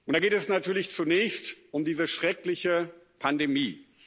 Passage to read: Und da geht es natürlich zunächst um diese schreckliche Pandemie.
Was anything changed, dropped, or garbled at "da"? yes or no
no